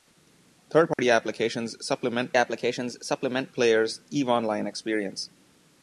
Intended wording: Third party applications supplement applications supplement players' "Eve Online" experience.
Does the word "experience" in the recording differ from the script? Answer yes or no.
no